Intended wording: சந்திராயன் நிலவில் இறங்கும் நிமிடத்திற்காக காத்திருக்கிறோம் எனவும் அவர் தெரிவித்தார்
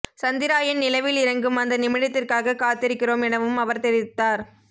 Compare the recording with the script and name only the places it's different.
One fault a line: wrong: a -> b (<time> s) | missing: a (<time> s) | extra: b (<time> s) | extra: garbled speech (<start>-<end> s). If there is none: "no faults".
extra: அந்த (1.6 s)